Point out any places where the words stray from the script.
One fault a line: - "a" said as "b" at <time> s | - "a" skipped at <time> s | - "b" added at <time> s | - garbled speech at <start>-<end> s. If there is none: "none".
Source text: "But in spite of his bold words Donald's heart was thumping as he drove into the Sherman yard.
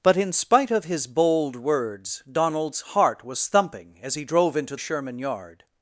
- "the" skipped at 4.8 s